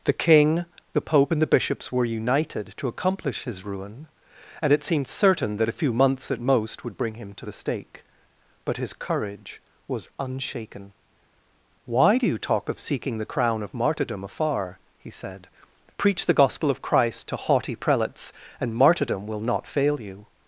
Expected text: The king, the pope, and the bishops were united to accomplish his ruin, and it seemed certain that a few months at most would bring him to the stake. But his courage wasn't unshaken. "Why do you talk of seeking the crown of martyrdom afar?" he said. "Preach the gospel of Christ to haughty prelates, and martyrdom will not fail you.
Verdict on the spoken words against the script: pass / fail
fail